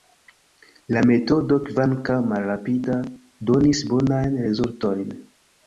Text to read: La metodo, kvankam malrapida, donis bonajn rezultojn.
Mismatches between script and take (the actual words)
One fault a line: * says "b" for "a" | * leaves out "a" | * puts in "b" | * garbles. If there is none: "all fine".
all fine